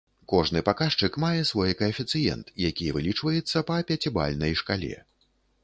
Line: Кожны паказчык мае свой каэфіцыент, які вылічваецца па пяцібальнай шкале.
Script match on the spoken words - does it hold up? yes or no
yes